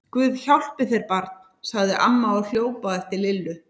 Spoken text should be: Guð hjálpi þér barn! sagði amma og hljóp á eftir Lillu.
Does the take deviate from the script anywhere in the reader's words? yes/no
no